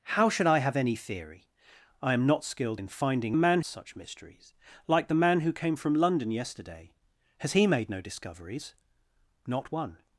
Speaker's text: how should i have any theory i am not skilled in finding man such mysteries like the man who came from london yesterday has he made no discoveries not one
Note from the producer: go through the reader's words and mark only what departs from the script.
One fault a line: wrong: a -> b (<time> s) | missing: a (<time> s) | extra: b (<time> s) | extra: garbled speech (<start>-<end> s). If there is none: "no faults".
no faults